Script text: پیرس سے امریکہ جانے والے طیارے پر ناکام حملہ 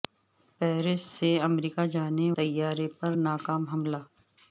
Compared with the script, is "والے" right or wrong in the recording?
wrong